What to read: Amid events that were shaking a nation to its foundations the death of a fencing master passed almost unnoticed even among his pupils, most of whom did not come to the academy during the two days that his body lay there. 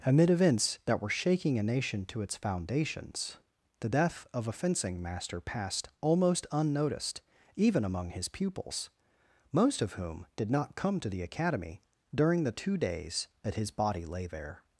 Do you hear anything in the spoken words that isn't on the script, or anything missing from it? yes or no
no